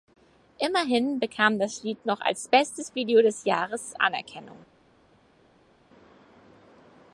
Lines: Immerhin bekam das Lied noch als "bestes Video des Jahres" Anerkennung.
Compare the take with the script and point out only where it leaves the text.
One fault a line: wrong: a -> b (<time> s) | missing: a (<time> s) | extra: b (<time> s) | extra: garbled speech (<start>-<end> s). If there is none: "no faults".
no faults